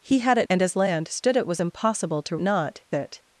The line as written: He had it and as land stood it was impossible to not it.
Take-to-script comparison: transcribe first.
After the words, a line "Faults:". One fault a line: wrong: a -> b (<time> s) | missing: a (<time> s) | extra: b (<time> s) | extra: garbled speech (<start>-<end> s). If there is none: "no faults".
He had it and as land stood it was impossible to not it.
Faults:
no faults